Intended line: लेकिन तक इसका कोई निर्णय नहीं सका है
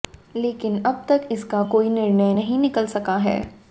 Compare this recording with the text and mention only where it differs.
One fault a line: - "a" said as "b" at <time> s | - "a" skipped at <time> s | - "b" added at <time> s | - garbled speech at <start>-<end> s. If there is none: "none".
- "अब" added at 0.8 s
- "निकल" added at 2.6 s